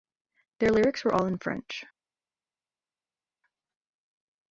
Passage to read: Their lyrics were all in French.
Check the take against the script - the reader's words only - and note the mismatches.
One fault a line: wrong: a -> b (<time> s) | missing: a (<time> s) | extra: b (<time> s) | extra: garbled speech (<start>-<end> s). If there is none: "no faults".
no faults